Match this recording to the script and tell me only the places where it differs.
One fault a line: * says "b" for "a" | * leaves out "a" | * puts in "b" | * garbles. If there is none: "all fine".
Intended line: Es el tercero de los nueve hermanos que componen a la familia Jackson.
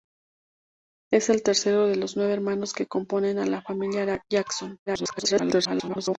* garbles